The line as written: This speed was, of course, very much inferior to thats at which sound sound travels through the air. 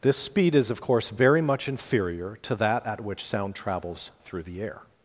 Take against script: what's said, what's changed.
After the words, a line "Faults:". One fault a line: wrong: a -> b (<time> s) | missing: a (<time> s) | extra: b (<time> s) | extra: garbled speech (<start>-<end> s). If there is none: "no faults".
This speed is, of course, very much inferior to that at which sound travels through the air.
Faults:
wrong: was -> is (0.6 s)
wrong: thats -> that (2.5 s)
missing: sound (3.5 s)